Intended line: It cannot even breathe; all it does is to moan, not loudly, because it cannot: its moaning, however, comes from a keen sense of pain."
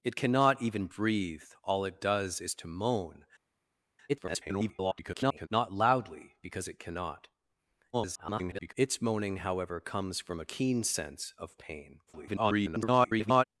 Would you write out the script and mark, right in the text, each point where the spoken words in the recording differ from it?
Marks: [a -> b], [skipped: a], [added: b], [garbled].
It cannot even breathe; all it does is to moan, [garbled] not loudly, because it cannot: [garbled] its moaning, however, comes from a keen sense of pain." [garbled]